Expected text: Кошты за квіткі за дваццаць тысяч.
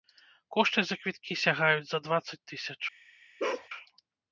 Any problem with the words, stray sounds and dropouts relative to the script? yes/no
yes